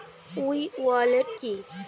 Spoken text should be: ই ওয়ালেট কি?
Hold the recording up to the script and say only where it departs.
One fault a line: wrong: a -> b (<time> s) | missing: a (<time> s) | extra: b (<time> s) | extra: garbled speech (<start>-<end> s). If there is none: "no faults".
no faults